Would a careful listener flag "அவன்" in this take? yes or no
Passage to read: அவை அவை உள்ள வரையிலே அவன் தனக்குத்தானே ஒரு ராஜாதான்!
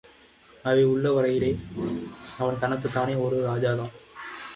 no